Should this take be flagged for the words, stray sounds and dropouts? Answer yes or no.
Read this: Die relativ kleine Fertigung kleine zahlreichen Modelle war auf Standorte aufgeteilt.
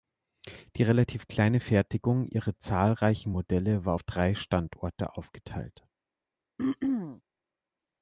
yes